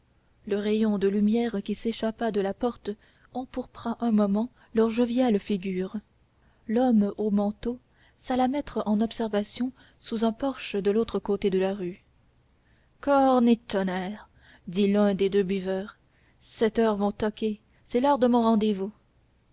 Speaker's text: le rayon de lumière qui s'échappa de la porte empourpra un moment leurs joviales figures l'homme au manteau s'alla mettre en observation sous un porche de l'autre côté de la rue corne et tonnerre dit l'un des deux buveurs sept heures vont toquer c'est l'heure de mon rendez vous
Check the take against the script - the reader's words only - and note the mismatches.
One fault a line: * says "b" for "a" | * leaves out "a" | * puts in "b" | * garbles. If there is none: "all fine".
all fine